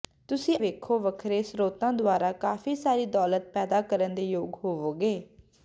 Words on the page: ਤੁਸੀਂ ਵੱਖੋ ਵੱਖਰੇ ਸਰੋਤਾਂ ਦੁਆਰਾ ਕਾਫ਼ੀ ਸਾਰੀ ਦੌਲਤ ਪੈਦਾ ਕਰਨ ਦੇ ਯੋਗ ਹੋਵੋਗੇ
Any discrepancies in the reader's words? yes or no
no